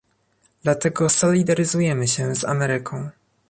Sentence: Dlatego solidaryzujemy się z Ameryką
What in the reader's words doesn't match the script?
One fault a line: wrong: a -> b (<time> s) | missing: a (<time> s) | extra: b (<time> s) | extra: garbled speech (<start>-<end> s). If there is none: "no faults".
no faults